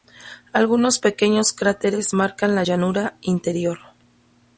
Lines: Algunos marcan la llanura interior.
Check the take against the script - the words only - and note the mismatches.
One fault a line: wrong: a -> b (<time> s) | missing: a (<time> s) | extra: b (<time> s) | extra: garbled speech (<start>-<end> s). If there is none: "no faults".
extra: pequeños cráteres (1.0 s)